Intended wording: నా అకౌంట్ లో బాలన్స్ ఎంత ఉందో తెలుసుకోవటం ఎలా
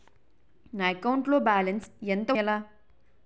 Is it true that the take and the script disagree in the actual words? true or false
true